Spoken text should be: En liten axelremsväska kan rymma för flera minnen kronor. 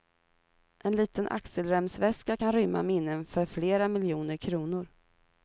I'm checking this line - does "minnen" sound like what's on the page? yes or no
no